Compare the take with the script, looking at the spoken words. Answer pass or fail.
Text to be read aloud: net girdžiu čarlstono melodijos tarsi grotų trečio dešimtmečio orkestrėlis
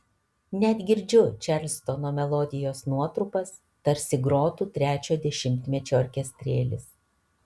fail